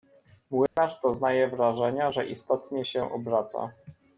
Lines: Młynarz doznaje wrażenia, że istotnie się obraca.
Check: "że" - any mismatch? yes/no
no